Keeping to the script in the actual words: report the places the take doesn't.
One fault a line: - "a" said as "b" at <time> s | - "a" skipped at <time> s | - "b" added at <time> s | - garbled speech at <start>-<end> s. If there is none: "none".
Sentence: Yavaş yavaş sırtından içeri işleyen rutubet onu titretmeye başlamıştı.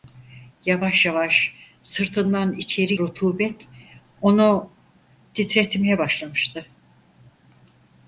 - "işleyen" skipped at 2.9 s